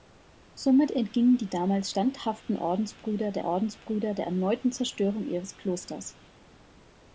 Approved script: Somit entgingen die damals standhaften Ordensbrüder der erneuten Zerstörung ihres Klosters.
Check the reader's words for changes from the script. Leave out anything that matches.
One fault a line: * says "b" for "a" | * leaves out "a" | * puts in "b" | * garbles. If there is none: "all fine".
* puts in "Ordensbrüder der"